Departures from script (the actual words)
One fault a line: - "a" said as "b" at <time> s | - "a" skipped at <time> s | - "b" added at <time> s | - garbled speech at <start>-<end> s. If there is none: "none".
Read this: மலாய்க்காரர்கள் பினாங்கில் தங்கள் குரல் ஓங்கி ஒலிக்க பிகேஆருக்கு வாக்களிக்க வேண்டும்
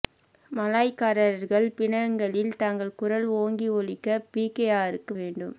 - "வாக்களிக்க" skipped at 5.2 s